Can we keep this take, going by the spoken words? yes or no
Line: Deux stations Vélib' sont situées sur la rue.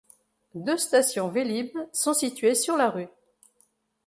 yes